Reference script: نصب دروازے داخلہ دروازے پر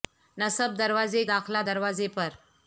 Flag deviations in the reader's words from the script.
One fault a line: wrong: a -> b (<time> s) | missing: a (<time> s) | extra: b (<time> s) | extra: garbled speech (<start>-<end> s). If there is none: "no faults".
no faults